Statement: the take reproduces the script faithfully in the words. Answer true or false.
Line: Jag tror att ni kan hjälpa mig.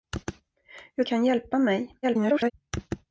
false